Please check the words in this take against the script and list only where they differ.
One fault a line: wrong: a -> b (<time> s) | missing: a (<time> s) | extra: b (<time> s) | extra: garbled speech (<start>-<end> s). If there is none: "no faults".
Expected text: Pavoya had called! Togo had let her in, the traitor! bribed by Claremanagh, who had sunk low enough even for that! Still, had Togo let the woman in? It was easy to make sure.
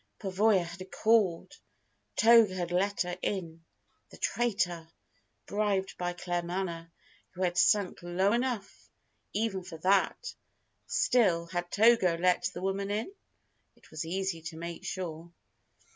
no faults